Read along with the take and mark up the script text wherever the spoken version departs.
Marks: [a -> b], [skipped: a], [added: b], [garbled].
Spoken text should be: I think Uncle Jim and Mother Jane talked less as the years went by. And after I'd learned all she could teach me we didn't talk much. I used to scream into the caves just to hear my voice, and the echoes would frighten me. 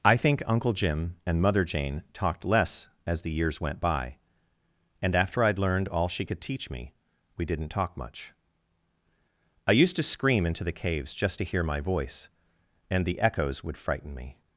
I think Uncle Jim and Mother Jane talked less as the years went by. And after I'd learned all she could teach me we didn't talk much. I used to scream into the caves just to hear my voice, and the echoes would frighten me.